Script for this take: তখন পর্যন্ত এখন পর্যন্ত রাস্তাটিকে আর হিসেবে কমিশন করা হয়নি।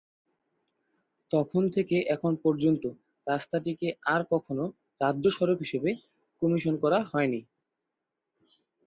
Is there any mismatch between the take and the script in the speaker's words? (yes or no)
yes